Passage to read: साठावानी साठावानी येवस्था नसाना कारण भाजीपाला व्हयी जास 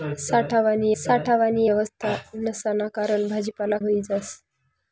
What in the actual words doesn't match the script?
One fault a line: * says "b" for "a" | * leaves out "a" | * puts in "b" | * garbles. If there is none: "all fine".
all fine